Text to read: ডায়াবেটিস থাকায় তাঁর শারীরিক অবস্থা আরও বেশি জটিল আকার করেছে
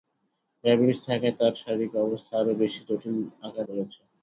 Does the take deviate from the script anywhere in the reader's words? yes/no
no